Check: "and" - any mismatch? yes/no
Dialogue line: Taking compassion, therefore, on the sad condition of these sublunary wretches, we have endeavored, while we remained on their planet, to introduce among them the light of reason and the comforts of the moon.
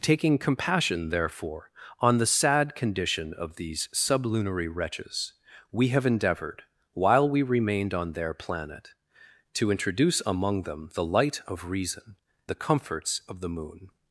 yes